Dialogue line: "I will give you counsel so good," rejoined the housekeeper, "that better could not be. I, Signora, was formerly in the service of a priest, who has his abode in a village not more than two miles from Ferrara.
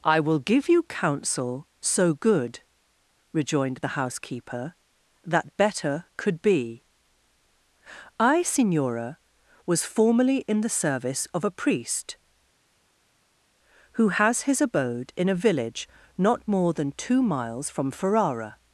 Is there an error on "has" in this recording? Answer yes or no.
no